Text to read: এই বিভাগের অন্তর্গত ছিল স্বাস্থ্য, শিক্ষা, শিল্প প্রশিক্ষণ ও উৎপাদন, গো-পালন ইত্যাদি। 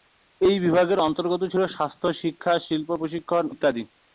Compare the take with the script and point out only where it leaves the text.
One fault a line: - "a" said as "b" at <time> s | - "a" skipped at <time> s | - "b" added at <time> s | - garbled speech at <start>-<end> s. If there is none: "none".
- "ও উৎপাদন গো-পালন" skipped at 3.5 s